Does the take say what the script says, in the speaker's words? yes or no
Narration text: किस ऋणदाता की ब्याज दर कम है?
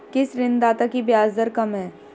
yes